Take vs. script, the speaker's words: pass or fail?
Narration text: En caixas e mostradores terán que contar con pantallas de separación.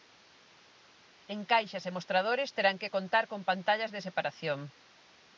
pass